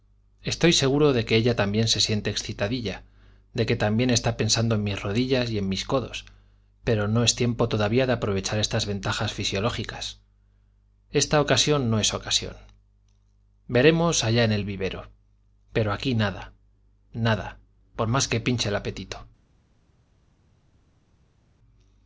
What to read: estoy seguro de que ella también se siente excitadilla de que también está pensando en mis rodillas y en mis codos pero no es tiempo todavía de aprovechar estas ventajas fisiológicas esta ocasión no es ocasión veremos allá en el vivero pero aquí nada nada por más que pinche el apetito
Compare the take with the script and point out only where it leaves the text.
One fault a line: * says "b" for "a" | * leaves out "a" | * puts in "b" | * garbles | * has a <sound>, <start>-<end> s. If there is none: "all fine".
all fine